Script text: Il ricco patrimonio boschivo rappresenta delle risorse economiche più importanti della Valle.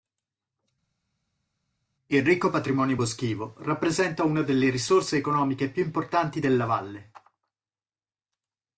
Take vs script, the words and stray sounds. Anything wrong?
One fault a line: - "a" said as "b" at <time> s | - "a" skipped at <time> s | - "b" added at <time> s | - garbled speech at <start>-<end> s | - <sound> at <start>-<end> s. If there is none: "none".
- "una" added at 4.2 s